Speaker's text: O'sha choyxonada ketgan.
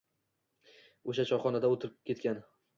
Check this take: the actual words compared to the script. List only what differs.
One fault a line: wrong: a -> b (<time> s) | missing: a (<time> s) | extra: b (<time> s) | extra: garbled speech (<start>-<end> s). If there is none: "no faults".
extra: o'tirib (1.8 s)